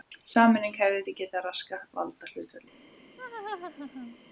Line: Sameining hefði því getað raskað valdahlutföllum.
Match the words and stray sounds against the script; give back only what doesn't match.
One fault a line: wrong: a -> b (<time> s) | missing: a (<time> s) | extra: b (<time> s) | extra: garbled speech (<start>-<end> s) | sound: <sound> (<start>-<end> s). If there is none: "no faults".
sound: laugh (3.2-4.2 s)